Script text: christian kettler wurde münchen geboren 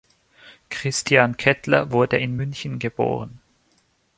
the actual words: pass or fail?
fail